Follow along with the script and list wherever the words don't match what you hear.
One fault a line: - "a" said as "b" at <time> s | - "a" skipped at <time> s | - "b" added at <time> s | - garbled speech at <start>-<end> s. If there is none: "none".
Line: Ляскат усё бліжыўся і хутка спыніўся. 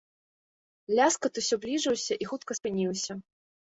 none